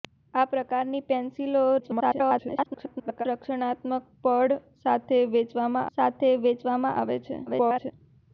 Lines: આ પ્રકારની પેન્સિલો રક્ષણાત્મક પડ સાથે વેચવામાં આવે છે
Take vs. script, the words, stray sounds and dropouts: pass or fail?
fail